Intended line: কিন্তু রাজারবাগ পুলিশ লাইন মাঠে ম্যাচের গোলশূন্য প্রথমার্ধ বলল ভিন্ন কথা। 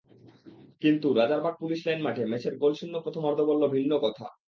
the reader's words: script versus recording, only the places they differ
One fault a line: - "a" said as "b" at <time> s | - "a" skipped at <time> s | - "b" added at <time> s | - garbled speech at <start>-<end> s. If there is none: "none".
none